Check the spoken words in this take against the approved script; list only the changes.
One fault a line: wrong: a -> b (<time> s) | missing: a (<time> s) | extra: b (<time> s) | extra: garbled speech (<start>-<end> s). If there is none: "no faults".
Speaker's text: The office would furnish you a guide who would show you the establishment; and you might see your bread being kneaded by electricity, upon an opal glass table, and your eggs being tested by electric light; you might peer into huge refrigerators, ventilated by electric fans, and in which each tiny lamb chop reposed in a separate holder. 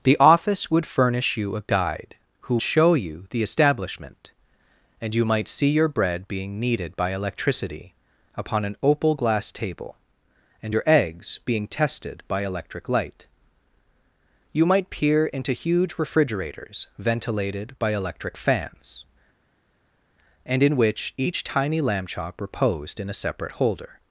missing: would (2.6 s)